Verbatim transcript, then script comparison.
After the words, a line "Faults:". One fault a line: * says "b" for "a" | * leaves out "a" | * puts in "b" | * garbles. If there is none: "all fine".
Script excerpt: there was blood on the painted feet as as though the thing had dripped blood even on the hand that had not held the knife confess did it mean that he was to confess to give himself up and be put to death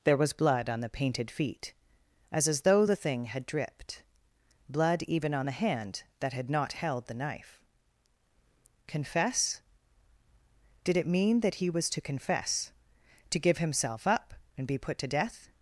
there was blood on the painted feet as as though the thing had dripped blood even on the hand that had not held the knife confess did it mean that he was to confess to give himself up and be put to death
Faults:
all fine